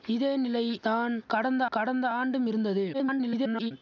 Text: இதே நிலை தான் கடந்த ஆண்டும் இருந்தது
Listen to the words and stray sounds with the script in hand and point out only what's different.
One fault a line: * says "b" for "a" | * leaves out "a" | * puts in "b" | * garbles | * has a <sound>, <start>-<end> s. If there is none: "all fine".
* puts in "கடந்த"
* garbles